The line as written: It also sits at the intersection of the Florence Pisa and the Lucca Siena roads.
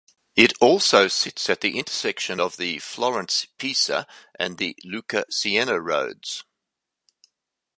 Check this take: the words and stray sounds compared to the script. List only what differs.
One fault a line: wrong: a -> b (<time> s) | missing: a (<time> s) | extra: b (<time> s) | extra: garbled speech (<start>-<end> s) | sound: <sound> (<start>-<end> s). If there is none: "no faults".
no faults